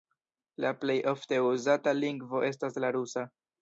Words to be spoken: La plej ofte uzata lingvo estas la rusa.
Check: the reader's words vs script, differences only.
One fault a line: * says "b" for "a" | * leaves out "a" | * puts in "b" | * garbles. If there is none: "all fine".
all fine